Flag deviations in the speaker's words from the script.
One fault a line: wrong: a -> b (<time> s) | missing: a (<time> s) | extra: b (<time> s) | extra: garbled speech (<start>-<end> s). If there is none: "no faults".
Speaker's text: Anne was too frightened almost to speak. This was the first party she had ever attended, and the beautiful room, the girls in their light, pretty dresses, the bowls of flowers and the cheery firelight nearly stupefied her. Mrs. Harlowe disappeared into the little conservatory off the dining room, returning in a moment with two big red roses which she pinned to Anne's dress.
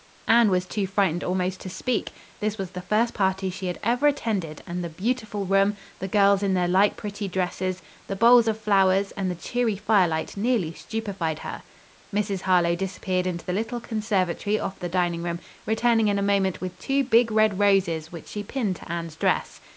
no faults